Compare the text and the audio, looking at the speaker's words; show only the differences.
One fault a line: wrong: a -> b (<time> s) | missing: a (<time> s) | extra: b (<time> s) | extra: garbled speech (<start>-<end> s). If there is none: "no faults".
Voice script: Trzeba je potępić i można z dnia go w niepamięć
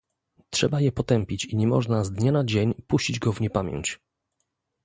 extra: nie (1.6 s)
extra: na dzień puścić (2.3 s)